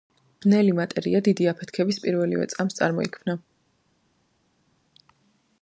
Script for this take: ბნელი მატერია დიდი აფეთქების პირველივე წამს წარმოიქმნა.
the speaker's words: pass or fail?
pass